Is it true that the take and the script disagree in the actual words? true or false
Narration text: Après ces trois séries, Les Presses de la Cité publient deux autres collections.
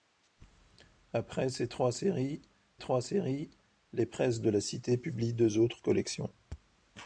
true